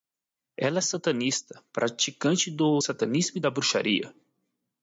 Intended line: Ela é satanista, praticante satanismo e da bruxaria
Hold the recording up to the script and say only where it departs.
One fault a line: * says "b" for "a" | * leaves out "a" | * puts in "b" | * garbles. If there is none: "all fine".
* puts in "do"